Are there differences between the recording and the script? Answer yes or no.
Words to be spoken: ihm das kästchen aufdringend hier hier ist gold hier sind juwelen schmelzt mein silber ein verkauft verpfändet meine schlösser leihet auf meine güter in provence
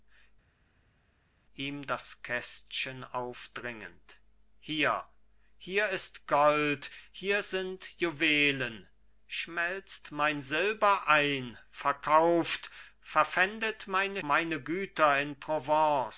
yes